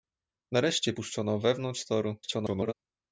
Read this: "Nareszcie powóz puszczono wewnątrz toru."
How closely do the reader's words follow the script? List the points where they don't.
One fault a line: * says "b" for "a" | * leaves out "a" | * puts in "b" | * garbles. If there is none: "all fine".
* leaves out "powóz"
* garbles